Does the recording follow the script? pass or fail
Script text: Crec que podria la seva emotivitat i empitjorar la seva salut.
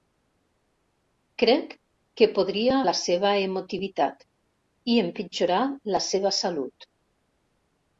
pass